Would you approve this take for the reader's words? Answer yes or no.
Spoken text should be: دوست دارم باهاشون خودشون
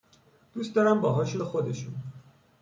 yes